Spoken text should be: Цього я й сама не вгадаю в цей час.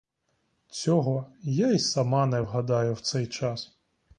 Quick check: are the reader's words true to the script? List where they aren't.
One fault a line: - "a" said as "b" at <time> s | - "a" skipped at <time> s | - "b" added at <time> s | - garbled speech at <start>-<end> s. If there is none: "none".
none